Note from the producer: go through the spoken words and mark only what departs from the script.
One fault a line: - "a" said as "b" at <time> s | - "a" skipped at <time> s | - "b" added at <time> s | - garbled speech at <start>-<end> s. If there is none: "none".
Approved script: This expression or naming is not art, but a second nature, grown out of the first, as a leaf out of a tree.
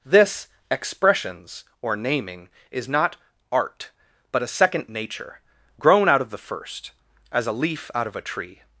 - "expression" said as "expressions" at 0.7 s